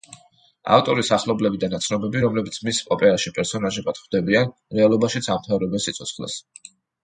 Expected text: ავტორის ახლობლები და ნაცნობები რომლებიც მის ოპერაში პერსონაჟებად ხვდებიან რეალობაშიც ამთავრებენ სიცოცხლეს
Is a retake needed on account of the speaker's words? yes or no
no